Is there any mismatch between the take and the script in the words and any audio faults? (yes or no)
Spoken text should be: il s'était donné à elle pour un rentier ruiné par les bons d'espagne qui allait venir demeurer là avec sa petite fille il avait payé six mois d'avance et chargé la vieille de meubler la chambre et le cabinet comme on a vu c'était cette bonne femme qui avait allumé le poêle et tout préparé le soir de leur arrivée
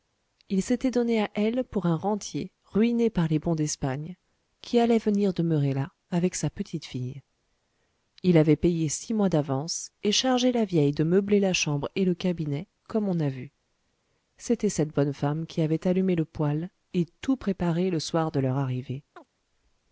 yes